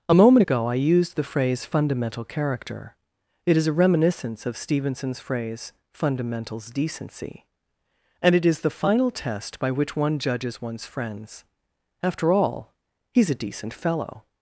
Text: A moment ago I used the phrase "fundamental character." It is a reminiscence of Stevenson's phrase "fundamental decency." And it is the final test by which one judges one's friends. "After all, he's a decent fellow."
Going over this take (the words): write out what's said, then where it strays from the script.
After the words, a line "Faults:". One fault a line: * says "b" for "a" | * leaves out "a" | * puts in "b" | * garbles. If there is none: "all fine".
A moment ago I used the phrase "fundamental character." It is a reminiscence of Stevenson's phrase "fundamentals decency." And it is the final test by which one judges one's friends. "After all, he's a decent fellow."
Faults:
* says "fundamentals" for "fundamental"